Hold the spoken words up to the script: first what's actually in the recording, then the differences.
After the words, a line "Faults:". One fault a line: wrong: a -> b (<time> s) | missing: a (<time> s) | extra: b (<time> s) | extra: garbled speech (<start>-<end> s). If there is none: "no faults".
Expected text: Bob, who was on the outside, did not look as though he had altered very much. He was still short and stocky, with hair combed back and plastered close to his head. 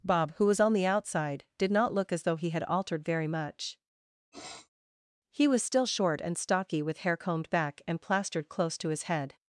Bob, who was on the outside, did not look as though he had altered very much. He was still short and stocky, with hair combed back and plastered close to his head.
Faults:
no faults